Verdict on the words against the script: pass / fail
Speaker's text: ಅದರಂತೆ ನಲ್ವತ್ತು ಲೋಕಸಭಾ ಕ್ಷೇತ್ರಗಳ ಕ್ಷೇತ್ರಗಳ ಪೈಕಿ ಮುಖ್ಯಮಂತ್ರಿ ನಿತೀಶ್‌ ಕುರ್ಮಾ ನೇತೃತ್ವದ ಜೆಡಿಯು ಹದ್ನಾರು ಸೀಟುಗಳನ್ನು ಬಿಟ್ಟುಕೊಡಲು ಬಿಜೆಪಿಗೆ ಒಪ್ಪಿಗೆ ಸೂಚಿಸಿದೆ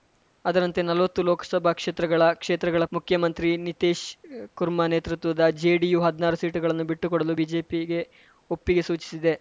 fail